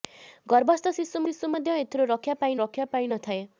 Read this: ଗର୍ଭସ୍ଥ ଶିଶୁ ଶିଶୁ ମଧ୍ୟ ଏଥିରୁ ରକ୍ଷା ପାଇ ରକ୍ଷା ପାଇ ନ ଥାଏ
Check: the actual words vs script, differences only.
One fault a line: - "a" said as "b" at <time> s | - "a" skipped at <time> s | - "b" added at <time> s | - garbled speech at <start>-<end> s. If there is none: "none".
none